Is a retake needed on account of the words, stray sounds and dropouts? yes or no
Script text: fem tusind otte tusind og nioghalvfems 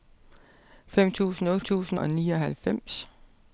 no